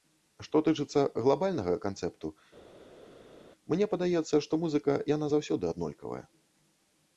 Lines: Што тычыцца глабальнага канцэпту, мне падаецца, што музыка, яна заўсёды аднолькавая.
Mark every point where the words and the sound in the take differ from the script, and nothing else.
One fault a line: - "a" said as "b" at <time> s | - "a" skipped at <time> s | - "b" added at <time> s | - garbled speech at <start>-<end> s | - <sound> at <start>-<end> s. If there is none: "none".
none